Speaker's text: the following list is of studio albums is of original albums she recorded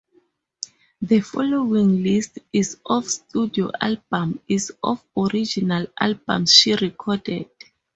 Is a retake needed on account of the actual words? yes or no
no